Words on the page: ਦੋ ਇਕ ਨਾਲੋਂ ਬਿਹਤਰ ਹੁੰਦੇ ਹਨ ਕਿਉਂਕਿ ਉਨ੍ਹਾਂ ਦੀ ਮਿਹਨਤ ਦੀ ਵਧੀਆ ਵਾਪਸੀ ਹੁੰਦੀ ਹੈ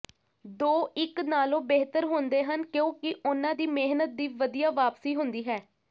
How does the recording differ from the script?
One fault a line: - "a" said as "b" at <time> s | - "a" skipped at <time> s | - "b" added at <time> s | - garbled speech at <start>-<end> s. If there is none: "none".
none